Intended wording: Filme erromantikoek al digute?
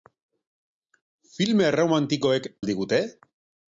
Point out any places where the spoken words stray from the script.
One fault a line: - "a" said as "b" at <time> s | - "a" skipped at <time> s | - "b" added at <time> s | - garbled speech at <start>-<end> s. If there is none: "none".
none